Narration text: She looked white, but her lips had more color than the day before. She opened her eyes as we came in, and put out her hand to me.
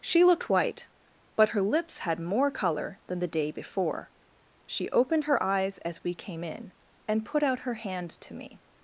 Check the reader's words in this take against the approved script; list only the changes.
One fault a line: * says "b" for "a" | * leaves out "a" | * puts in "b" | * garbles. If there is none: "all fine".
all fine